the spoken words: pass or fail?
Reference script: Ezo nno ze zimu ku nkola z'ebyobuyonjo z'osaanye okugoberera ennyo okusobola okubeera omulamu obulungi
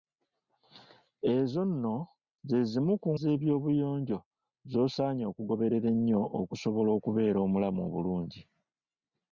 fail